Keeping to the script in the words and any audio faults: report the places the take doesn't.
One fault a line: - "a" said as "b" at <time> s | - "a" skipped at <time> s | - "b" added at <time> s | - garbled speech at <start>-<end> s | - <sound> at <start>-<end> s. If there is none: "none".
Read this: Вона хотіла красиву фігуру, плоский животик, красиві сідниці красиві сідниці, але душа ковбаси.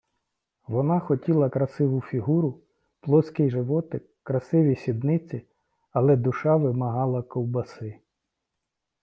- "красиві сідниці" skipped at 5.5 s
- "вимагала" added at 6.6 s